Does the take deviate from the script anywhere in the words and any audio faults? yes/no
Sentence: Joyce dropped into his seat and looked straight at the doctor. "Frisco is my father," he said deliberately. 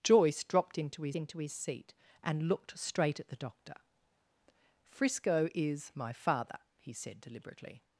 yes